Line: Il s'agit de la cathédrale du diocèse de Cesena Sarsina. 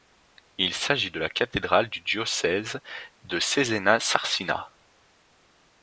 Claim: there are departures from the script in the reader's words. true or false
false